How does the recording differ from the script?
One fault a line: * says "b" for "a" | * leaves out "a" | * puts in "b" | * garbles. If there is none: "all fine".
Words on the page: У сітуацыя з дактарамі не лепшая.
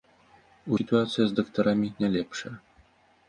all fine